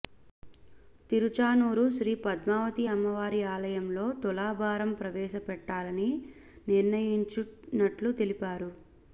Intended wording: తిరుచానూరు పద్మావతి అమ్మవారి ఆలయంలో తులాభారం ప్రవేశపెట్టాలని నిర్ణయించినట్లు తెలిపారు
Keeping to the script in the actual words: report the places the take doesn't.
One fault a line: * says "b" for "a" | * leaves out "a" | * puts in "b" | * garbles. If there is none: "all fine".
* puts in "శ్రీ"